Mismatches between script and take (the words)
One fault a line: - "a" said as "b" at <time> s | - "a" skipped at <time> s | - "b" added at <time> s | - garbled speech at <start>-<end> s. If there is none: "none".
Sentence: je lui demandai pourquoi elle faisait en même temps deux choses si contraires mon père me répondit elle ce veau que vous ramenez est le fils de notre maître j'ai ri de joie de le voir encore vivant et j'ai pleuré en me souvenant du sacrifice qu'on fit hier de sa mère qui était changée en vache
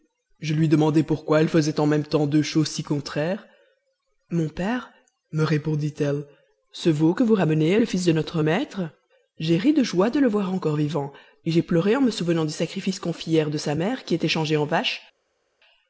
none